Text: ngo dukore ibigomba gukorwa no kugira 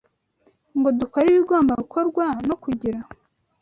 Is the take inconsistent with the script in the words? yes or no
no